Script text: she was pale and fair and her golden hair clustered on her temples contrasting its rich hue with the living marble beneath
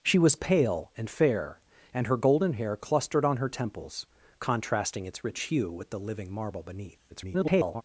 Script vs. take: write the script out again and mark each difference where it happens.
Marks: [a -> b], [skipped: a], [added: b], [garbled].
she was pale and fair and her golden hair clustered on her temples contrasting its rich hue with the living marble beneath [garbled]